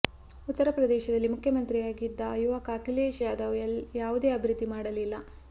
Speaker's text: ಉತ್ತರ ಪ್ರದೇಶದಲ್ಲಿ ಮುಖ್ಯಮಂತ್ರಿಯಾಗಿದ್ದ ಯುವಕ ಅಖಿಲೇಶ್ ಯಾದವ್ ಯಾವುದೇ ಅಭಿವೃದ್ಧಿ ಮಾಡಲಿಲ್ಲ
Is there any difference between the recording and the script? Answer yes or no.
no